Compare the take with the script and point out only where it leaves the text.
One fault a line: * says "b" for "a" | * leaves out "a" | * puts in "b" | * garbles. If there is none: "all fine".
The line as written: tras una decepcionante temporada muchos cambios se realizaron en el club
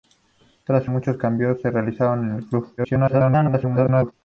* leaves out "una decepcionante temporada"
* garbles